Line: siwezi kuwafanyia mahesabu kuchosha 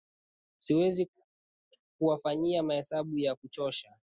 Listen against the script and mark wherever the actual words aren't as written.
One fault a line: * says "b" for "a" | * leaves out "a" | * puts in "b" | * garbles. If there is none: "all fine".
* puts in "ya"